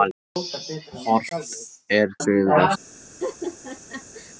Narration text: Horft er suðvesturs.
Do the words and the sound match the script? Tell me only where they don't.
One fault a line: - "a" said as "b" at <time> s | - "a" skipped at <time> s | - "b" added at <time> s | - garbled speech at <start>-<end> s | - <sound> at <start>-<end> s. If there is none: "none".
- laugh at 3.2-4.3 s